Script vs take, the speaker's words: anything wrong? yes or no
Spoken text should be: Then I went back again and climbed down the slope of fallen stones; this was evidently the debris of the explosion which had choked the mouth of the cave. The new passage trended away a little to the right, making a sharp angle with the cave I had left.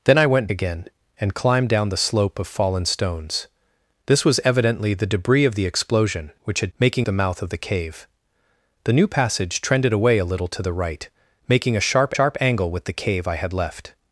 yes